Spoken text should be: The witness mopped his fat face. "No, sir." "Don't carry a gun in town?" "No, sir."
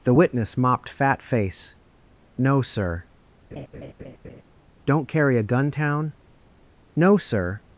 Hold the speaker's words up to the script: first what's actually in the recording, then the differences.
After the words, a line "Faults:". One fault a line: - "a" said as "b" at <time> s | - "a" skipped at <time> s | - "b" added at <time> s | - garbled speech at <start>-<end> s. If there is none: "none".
The witness mopped fat face. "No, sir." "Don't carry a gun town?" "No, sir."
Faults:
- "his" skipped at 0.9 s
- "in" skipped at 5.7 s